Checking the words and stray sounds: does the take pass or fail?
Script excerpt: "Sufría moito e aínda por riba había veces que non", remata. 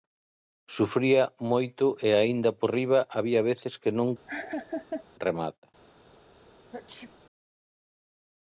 fail